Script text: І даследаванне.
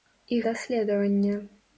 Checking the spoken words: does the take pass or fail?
pass